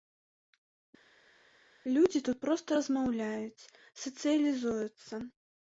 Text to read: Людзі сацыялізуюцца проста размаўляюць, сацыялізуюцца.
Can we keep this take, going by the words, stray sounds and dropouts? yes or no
no